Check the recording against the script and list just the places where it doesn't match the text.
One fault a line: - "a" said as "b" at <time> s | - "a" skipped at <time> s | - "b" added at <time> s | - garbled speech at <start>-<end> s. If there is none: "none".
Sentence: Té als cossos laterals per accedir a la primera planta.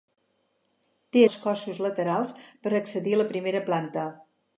none